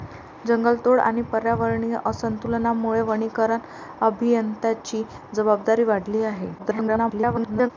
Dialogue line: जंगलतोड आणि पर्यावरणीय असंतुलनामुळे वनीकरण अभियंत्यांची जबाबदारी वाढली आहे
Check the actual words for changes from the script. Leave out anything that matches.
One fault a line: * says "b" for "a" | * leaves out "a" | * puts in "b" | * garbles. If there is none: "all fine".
* garbles